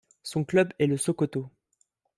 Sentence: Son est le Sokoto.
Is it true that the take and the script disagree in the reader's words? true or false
true